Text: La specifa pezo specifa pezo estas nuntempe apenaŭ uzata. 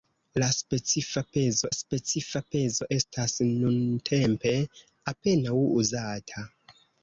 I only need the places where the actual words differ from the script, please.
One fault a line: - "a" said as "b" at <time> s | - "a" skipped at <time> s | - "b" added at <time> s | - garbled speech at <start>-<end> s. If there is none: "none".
none